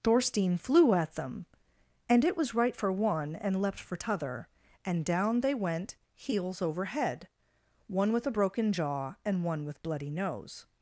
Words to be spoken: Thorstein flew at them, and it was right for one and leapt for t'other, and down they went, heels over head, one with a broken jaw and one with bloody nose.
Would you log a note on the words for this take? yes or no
no